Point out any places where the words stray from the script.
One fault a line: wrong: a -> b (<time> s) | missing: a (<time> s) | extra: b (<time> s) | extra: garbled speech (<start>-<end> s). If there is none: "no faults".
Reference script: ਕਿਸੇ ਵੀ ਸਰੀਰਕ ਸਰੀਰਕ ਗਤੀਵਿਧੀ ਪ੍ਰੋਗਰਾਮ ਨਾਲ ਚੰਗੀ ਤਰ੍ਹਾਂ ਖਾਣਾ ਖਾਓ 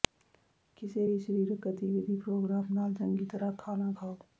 missing: ਸਰੀਰਕ (1.7 s)